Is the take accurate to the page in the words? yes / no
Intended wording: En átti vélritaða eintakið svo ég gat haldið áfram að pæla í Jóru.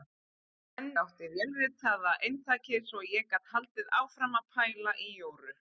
yes